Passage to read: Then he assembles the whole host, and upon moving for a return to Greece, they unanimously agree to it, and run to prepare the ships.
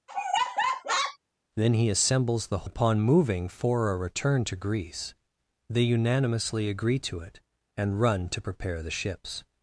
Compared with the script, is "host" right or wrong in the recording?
wrong